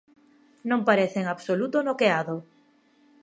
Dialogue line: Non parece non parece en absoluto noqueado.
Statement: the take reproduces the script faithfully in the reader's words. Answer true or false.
false